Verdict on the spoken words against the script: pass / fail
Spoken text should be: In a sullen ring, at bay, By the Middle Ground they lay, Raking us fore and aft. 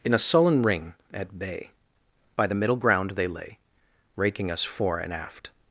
pass